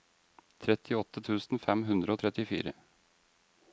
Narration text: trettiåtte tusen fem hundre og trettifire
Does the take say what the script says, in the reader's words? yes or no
yes